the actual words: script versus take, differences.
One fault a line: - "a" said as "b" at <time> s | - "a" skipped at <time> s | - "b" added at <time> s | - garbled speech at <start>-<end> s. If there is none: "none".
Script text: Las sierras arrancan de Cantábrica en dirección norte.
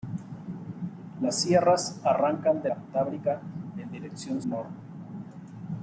none